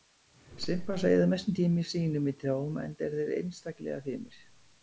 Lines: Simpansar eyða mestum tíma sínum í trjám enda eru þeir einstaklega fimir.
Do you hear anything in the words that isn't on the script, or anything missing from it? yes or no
no